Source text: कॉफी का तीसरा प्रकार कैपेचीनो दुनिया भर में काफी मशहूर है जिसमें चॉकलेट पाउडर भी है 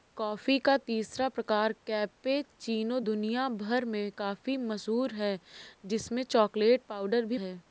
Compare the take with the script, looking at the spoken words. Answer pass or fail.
pass